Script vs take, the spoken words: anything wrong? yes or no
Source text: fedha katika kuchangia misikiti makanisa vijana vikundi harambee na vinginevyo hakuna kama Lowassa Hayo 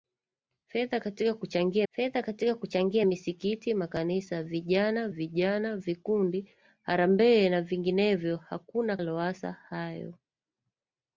yes